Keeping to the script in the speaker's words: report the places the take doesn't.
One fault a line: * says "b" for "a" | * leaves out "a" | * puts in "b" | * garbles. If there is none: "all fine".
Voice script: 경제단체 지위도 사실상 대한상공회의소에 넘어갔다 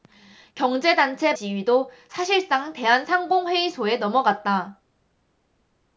all fine